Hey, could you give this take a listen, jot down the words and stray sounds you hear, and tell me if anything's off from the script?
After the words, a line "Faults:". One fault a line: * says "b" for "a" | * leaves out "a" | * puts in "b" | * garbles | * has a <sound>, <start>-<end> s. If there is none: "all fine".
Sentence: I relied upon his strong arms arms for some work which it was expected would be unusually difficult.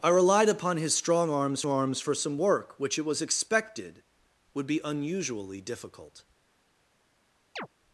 I relied upon his strong arms arms for some work which it was expected would be unusually difficult.
Faults:
* has a chirp, 7.6-7.7 s